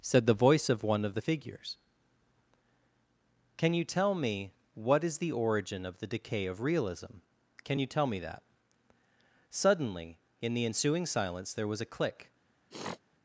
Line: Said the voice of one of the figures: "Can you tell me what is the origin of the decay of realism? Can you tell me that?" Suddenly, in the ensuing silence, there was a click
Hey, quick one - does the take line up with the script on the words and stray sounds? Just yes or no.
no